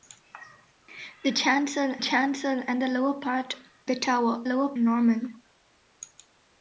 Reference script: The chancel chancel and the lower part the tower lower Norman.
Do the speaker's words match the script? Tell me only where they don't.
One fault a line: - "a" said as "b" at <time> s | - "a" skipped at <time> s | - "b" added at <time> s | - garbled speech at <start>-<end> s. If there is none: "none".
none